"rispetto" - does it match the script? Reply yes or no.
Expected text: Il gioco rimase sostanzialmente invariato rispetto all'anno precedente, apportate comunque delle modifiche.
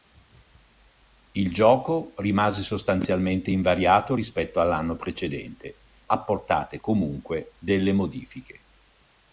yes